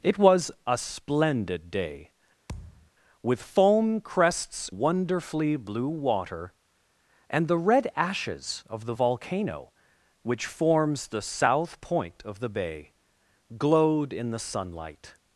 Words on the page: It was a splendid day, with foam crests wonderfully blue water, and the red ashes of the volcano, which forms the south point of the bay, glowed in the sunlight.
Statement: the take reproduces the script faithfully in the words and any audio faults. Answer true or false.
false